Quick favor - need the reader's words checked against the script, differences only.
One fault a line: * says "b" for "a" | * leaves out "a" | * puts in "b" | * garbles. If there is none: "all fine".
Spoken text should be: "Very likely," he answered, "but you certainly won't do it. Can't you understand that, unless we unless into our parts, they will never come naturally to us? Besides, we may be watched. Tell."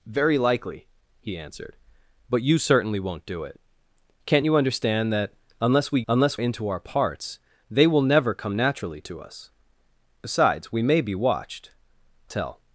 all fine